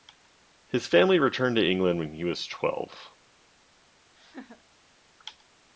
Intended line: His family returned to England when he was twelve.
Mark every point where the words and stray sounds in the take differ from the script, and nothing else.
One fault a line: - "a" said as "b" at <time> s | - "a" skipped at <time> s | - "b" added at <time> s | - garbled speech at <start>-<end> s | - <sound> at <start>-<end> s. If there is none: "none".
- laugh at 4.2-4.6 s